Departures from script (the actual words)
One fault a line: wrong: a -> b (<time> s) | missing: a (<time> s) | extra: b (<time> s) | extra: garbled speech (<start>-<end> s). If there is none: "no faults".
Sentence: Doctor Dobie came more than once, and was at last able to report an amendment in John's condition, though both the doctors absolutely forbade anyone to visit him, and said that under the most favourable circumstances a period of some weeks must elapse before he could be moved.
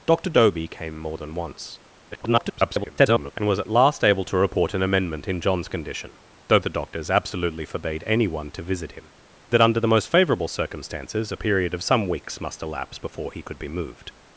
extra: garbled speech (2.1-3.3 s)
missing: both (6.6 s)
missing: and said (9.1 s)